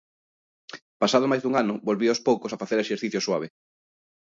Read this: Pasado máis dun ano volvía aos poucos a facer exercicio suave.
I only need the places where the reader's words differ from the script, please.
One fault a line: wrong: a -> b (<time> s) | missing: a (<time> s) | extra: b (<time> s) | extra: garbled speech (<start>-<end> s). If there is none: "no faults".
no faults